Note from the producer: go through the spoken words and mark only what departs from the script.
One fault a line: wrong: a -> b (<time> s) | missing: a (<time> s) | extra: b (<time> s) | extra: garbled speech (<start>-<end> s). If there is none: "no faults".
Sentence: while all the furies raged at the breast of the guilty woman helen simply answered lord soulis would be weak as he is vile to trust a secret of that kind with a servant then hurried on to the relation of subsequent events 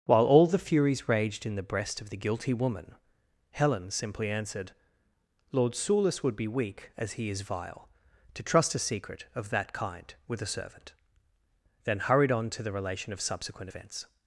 wrong: at -> in (1.5 s)